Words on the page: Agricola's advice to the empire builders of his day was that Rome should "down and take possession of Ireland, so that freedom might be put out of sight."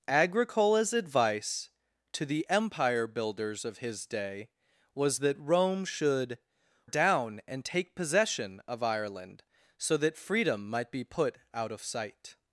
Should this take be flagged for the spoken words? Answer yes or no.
no